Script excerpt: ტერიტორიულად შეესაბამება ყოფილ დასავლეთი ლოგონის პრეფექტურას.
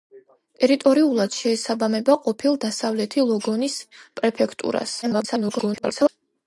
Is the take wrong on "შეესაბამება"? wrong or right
right